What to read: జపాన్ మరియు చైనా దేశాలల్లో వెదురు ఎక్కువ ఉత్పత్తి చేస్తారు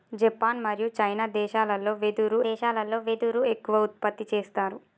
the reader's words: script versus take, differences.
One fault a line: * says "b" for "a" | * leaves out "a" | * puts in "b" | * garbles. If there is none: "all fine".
* puts in "దేశాలల్లో వెదురు"